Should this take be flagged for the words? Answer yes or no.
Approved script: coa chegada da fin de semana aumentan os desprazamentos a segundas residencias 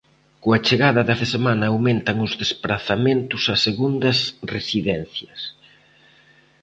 yes